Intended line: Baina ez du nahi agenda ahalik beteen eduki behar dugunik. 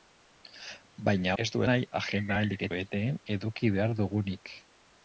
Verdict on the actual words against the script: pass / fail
pass